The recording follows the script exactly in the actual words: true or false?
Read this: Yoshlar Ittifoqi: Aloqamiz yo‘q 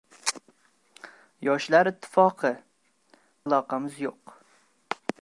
true